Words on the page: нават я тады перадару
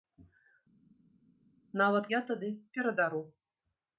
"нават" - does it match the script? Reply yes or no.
yes